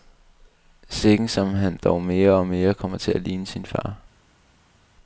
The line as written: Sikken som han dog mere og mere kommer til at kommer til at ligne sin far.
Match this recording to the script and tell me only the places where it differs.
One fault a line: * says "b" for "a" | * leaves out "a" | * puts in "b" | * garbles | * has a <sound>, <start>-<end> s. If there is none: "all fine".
* leaves out "kommer til at"